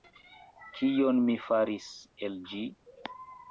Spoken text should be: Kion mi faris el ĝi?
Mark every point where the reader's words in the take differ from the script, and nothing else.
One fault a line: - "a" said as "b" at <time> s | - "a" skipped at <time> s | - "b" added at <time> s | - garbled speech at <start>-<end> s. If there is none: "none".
none